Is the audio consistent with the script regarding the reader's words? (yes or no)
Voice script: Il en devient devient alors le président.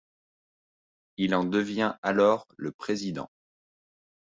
no